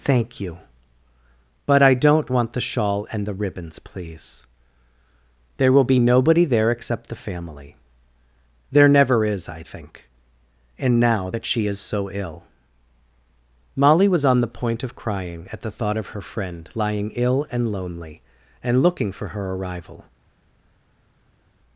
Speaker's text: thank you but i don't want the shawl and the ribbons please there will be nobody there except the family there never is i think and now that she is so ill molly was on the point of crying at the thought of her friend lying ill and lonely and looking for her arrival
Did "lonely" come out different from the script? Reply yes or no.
no